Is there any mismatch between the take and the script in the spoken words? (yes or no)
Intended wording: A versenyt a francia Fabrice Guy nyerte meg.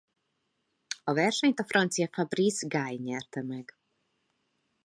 no